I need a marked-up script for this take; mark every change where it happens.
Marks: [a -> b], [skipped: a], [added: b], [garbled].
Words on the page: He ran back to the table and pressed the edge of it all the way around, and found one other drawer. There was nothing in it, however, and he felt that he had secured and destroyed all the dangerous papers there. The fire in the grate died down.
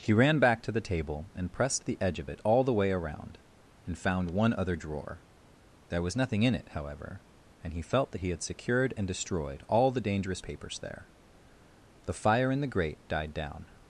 He ran back to the table and pressed the edge of it all the way around, and found one other drawer. There was nothing in it, however, and he felt that he had secured and destroyed all the dangerous papers there. The fire in the grate died down.